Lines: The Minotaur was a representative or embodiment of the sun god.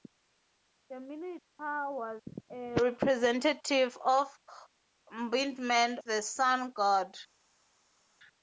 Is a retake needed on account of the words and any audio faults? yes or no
yes